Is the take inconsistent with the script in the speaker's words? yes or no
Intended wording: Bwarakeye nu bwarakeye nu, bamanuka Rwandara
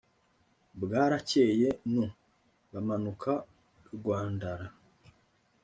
yes